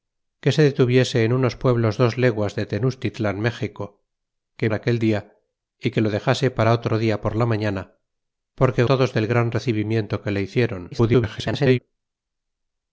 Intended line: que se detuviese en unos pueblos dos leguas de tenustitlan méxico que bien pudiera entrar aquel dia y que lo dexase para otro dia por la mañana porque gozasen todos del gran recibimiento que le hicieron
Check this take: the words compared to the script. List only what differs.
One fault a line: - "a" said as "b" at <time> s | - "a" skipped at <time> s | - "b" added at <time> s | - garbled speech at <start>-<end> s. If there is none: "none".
- "bien pudiera entrar" skipped at 4.7 s
- "gozasen" skipped at 8.8 s
- garbled speech at 10.9-11.8 s